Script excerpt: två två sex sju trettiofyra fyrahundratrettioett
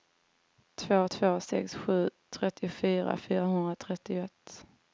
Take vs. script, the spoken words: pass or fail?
pass